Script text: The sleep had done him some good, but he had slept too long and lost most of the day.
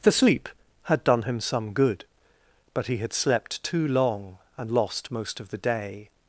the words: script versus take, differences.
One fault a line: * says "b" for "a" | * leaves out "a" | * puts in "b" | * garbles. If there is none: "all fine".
all fine